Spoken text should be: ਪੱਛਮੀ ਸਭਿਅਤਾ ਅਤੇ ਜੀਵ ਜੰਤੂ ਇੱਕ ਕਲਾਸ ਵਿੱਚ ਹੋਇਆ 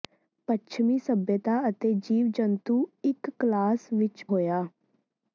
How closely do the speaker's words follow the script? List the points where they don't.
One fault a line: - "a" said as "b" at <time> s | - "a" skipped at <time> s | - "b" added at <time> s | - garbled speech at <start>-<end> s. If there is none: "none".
none